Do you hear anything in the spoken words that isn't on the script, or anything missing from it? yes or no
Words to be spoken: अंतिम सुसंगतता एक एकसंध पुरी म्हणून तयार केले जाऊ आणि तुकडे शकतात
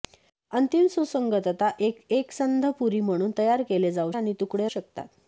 no